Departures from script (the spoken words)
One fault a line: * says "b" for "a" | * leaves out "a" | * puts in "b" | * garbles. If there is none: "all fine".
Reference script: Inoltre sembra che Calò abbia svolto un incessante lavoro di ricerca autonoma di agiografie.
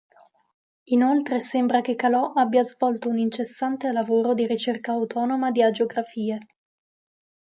all fine